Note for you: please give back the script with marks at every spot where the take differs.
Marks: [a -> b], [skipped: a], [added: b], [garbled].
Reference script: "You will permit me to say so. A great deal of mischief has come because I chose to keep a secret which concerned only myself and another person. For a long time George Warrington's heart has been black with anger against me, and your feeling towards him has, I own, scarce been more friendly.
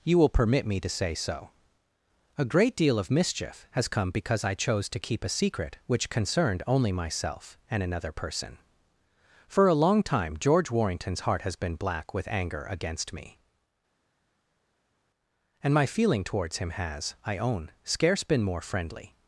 "You will permit me to say so. A great deal of mischief has come because I chose to keep a secret which concerned only myself and another person. For a long time George Warrington's heart has been black with anger against me, and [your -> my] feeling towards him has, I own, scarce been more friendly.